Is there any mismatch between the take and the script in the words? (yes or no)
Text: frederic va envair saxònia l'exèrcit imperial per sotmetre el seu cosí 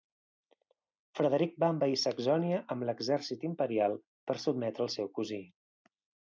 yes